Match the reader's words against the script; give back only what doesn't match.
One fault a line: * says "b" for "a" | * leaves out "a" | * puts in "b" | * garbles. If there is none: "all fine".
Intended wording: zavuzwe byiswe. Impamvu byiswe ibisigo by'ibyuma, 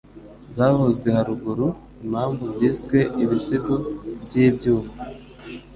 * says "haruguru" for "byiswe"